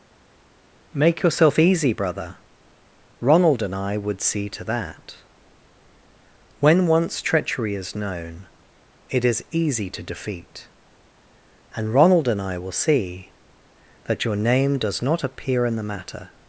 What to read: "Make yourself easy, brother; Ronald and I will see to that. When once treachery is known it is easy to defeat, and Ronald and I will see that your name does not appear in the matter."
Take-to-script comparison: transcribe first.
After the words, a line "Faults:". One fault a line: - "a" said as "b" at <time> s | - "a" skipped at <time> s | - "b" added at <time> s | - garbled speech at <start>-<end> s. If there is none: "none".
"Make yourself easy, brother; Ronald and I would see to that. When once treachery is known it is easy to defeat, and Ronald and I will see that your name does not appear in the matter."
Faults:
- "will" said as "would" at 4.0 s